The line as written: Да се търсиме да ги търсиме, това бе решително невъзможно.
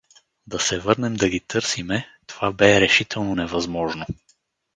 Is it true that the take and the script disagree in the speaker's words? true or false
true